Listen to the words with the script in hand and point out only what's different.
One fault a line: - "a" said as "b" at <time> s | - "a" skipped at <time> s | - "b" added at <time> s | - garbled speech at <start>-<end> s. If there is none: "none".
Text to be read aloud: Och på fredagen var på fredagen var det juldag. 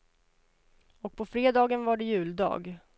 - "på fredagen var" skipped at 2.0 s